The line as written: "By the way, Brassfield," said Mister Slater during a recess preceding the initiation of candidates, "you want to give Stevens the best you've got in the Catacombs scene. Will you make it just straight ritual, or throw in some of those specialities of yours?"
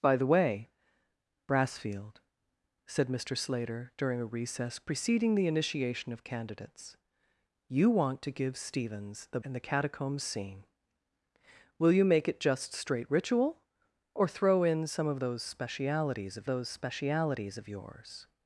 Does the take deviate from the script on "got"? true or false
true